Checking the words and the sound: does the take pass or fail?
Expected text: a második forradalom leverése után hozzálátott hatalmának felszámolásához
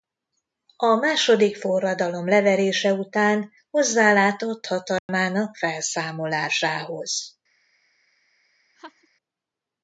fail